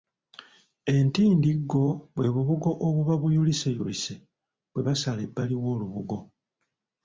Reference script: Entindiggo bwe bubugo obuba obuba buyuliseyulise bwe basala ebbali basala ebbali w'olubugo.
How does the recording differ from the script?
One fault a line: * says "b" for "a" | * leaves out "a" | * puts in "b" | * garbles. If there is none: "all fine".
* leaves out "obuba"
* leaves out "basala ebbali"